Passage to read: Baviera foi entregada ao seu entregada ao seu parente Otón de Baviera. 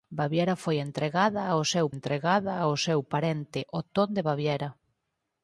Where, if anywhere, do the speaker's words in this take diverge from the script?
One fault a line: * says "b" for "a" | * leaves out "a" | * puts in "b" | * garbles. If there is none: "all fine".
all fine